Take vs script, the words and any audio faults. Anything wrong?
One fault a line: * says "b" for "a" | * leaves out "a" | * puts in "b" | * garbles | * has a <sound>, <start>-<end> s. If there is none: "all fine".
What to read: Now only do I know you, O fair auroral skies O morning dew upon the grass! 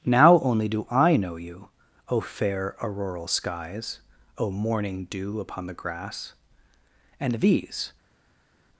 * puts in "And these"